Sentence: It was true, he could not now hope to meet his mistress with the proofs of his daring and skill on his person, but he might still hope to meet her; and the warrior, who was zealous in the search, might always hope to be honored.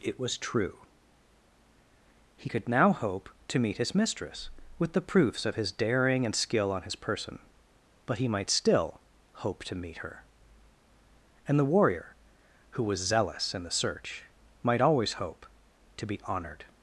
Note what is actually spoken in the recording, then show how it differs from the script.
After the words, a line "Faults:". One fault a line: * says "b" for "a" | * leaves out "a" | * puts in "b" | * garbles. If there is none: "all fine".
It was true, he could now hope to meet his mistress with the proofs of his daring and skill on his person, but he might still hope to meet her; and the warrior, who was zealous in the search, might always hope to be honored.
Faults:
* leaves out "not"